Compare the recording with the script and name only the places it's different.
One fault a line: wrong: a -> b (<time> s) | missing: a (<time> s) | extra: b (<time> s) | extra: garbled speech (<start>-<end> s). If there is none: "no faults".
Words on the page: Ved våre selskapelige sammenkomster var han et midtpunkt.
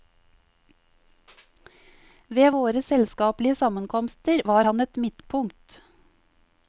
no faults